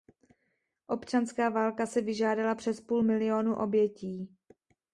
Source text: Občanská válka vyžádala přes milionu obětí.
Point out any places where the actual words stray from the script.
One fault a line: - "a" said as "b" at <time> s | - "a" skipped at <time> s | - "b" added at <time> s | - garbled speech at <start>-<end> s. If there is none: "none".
- "si" added at 1.9 s
- "půl" added at 2.8 s